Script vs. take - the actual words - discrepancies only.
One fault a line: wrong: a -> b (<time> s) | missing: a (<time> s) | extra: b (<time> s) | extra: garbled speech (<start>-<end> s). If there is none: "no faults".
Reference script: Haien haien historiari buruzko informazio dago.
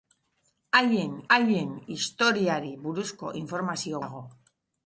no faults